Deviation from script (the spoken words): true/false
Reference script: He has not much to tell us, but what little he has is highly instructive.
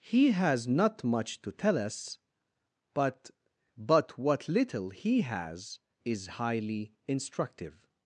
true